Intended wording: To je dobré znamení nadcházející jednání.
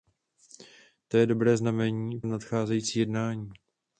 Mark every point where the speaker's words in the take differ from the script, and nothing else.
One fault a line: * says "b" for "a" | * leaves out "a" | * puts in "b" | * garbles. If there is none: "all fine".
all fine